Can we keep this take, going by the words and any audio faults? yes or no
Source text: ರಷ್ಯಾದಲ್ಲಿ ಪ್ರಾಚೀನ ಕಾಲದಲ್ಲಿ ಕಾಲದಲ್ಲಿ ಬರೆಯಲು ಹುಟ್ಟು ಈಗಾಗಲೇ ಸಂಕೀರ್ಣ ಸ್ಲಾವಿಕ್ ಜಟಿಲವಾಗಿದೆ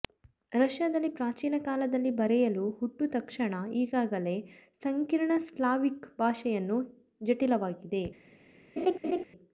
no